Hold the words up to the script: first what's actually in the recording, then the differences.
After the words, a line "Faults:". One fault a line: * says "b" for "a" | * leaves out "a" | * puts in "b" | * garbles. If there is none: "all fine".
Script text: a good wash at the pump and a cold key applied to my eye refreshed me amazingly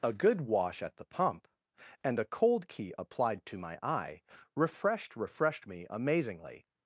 a good wash at the pump and a cold key applied to my eye refreshed refreshed me amazingly
Faults:
* puts in "refreshed"